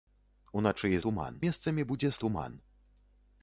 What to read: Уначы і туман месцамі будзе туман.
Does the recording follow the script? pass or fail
pass